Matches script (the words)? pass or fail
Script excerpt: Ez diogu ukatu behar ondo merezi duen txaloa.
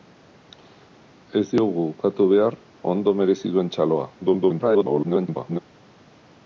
fail